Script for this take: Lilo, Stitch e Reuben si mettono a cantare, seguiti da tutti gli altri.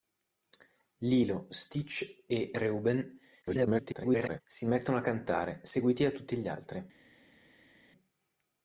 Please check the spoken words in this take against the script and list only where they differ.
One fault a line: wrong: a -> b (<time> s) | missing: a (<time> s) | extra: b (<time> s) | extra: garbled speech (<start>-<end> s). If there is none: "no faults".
extra: garbled speech (3.4-4.4 s)